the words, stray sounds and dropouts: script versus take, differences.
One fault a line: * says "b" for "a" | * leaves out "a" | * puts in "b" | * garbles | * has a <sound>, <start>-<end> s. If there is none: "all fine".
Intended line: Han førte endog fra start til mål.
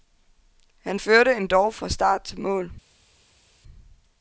all fine